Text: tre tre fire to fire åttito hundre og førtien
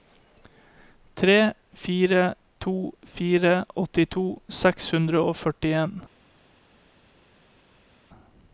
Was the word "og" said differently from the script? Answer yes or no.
no